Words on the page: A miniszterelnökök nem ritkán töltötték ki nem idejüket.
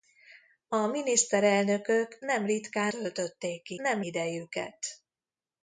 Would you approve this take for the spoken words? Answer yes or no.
yes